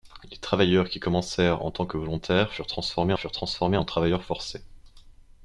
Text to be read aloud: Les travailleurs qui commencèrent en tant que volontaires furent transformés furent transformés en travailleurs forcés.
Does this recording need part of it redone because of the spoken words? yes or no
no